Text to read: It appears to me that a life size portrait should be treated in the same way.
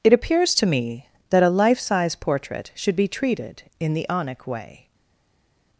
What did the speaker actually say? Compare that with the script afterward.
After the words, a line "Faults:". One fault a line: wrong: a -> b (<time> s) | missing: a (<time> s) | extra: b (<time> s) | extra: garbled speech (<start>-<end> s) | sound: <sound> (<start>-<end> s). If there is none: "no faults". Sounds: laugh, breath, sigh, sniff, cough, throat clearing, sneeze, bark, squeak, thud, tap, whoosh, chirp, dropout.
It appears to me that a life size portrait should be treated in the onic way.
Faults:
wrong: same -> onic (4.1 s)